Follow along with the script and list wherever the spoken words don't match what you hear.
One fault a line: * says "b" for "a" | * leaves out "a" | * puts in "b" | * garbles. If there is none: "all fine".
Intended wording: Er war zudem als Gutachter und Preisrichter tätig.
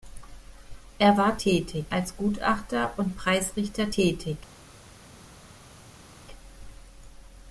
* says "tätig" for "zudem"